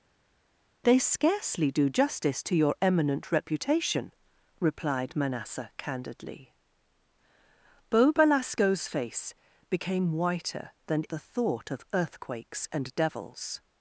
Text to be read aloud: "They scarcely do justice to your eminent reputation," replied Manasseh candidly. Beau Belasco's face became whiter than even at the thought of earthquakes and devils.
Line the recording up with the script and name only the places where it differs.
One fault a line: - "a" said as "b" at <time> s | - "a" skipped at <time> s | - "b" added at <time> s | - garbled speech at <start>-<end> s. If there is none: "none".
- "even at" skipped at 11.0 s